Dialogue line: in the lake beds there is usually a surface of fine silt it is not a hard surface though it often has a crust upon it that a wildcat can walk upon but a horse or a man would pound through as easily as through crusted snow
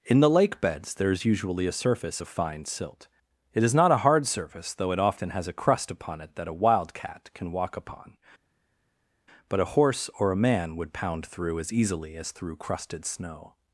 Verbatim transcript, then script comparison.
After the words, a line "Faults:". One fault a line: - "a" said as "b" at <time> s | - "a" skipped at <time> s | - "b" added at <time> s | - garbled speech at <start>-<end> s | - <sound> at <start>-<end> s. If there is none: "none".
in the lake beds there is usually a surface of fine silt it is not a hard surface though it often has a crust upon it that a wildcat can walk upon but a horse or a man would pound through as easily as through crusted snow
Faults:
none